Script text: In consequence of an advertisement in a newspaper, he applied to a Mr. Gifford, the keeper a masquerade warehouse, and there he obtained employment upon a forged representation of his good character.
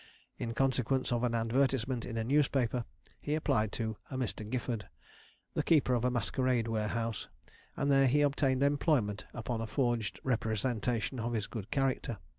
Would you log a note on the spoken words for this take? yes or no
yes